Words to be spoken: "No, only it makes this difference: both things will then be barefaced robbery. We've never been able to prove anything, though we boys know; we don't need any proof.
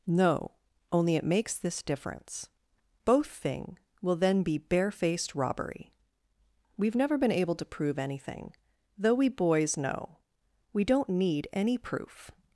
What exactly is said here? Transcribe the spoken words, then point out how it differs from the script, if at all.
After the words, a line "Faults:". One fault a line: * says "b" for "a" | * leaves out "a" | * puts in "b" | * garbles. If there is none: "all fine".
"No, only it makes this difference: both thing will then be barefaced robbery. We've never been able to prove anything, though we boys know; we don't need any proof.
Faults:
* says "thing" for "things"